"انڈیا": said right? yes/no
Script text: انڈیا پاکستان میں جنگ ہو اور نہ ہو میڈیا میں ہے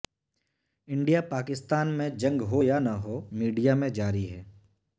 yes